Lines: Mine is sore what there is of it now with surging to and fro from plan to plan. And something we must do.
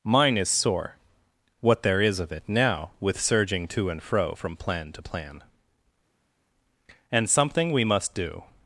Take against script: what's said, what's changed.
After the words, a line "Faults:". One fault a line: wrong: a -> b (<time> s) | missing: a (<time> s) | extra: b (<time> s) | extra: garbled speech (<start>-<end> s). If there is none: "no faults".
Mine is sore what there is of it now with surging to and fro from plan to plan. And something we must do.
Faults:
no faults